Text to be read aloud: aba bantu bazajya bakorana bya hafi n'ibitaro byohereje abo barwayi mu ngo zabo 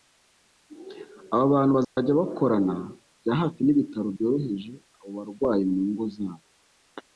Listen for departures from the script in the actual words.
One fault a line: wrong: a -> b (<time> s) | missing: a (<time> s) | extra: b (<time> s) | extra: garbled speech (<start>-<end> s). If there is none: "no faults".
no faults